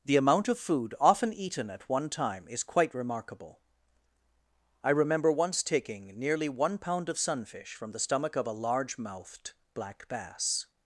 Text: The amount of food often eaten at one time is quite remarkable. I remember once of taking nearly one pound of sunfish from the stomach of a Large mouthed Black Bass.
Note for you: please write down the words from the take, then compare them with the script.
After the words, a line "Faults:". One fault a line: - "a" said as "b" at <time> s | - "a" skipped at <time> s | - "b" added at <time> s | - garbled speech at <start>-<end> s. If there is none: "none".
The amount of food often eaten at one time is quite remarkable. I remember once taking nearly one pound of sunfish from the stomach of a Large mouthed Black Bass.
Faults:
- "of" skipped at 5.6 s